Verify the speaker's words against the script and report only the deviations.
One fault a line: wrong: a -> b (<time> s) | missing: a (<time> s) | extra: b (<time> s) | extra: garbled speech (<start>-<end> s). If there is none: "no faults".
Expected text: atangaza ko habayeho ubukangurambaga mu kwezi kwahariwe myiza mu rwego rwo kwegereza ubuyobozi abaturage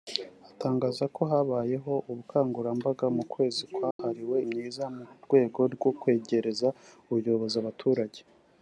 no faults